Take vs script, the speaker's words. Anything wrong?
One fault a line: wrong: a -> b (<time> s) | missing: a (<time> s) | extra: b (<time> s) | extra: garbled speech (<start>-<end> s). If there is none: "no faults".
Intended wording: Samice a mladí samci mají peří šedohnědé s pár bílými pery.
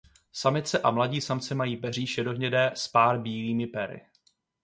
no faults